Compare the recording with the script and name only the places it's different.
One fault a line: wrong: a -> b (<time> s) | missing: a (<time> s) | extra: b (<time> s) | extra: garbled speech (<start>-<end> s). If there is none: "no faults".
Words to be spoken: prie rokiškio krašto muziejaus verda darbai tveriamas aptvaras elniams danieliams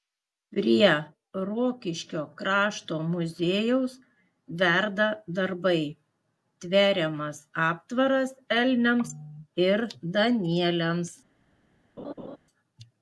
extra: ir (9.7 s)